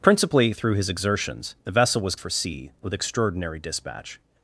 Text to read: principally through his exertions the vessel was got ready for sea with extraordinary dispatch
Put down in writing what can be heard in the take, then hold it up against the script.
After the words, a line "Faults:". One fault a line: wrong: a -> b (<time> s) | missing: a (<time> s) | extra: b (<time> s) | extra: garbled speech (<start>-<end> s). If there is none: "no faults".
principally through his exertions the vessel was for sea with extraordinary dispatch
Faults:
missing: got ready (2.1 s)